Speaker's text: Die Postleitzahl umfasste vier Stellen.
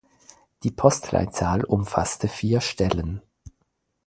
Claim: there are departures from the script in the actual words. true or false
false